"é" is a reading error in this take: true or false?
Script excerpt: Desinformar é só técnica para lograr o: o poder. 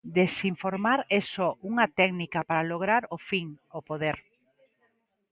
false